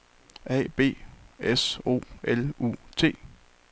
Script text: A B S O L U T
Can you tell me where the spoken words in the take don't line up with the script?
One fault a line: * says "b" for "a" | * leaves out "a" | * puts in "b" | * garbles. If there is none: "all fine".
all fine